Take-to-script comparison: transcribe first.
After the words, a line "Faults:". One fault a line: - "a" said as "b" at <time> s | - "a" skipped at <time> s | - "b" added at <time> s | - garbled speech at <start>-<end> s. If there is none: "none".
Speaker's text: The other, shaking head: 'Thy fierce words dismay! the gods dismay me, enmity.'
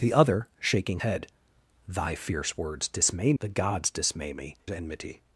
The other, shaking head: 'Thy fierce words dismay! the gods dismay me, enmity.'
Faults:
none